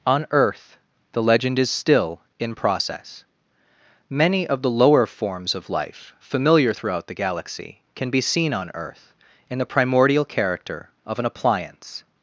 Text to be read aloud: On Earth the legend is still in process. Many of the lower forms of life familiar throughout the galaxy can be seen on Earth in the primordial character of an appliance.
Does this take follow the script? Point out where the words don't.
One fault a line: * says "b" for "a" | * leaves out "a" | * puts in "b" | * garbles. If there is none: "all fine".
all fine